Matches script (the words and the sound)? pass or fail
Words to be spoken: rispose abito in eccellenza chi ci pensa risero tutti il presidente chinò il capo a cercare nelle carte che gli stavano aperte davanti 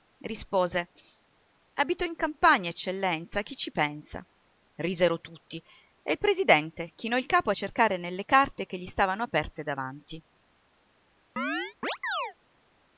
fail